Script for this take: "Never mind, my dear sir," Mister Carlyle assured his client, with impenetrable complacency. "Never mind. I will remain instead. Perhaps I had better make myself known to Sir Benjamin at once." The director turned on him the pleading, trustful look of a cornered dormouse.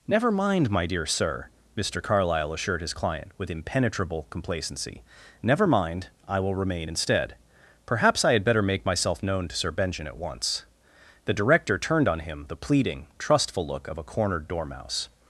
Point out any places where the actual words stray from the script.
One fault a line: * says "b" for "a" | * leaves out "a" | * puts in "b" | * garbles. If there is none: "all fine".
all fine